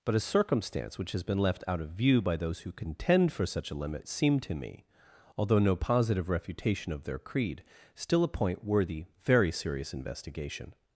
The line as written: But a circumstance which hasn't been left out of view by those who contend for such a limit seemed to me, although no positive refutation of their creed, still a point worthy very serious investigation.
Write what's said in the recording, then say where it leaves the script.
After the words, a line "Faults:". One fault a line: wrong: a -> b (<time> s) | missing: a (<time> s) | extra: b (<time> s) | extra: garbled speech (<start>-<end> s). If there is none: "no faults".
But a circumstance which has been left out of view by those who contend for such a limit seemed to me, although no positive refutation of their creed, still a point worthy very serious investigation.
Faults:
wrong: hasn't -> has (1.1 s)